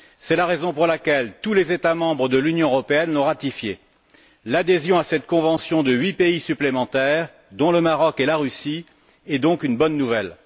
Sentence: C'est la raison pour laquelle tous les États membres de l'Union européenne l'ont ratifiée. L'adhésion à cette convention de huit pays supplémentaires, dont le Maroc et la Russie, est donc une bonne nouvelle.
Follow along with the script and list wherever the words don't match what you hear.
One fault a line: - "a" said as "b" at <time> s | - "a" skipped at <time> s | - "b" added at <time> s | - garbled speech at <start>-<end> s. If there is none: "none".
none